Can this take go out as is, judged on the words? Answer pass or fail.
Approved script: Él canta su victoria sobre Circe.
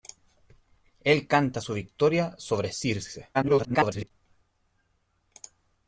fail